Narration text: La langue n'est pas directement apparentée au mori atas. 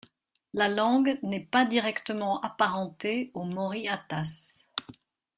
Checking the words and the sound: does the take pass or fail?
pass